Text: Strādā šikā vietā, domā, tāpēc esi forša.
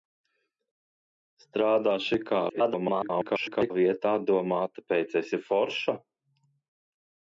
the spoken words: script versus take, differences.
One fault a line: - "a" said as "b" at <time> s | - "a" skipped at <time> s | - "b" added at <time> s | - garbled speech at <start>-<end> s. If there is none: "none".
- garbled speech at 2.5-3.7 s